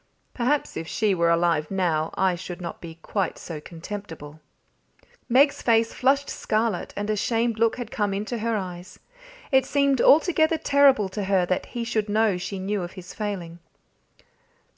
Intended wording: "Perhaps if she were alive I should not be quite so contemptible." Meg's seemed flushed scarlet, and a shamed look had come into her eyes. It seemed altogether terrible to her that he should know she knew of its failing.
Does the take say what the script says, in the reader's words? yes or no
no